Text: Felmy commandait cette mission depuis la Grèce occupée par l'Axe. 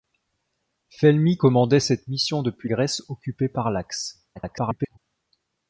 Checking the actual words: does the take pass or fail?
fail